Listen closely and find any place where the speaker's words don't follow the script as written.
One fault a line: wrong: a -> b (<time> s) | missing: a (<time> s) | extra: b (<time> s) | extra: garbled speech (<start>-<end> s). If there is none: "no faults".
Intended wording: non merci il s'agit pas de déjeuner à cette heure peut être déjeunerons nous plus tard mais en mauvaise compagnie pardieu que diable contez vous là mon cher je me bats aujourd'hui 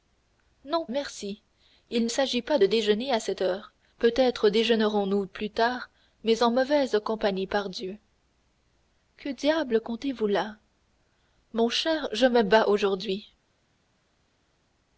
no faults